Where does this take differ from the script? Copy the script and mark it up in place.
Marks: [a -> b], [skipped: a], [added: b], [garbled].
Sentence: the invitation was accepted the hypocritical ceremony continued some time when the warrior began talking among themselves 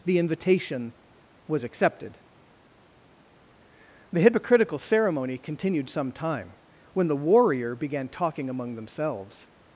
the invitation was accepted the hypocritical ceremony continued some time when the warrior began talking among themselves